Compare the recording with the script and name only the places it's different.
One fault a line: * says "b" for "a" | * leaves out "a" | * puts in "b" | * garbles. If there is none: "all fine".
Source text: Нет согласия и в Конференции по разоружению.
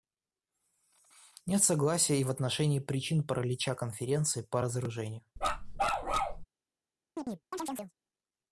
* puts in "отношении причин паралича"